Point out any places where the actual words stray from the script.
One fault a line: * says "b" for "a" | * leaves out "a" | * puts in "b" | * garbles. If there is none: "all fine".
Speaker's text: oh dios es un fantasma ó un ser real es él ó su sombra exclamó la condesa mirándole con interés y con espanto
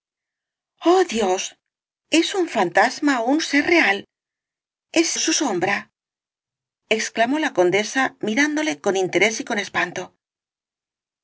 * leaves out "él ó"